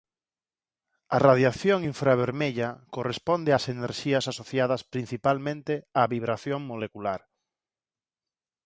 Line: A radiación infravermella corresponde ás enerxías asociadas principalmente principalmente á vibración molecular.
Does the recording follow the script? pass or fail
fail